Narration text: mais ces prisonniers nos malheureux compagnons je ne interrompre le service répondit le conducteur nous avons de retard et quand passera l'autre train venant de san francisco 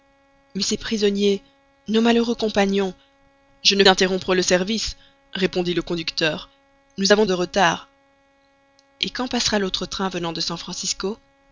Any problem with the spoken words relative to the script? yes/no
no